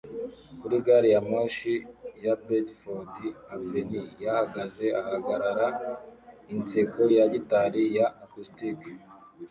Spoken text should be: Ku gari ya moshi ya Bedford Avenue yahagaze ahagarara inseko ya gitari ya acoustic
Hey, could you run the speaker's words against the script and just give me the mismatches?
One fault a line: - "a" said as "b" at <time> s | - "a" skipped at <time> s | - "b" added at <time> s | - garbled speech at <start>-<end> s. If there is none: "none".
- "Ku" said as "Kuri" at 0.6 s